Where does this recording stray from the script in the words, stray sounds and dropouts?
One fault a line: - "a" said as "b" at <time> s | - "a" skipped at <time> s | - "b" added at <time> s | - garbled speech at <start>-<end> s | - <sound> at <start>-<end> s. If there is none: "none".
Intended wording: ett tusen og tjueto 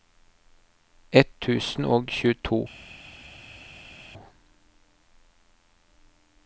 none